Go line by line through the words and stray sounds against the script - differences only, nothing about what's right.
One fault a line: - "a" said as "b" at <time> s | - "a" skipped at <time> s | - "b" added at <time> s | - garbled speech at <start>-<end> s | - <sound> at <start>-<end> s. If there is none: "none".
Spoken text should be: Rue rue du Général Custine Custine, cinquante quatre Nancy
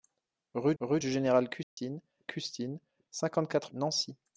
- dropout at 1.6-1.8 s